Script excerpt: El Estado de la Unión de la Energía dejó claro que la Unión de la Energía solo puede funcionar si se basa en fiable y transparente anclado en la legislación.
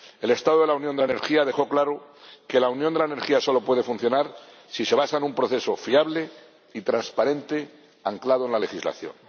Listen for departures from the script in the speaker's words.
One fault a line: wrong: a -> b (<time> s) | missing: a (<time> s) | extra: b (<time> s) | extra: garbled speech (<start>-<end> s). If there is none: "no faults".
extra: un proceso (5.2 s)